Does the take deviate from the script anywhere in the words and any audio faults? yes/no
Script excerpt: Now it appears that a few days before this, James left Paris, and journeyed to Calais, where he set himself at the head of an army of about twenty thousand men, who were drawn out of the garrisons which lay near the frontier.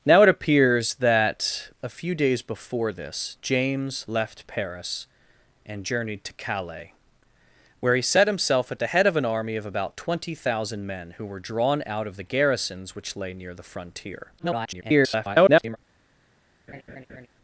yes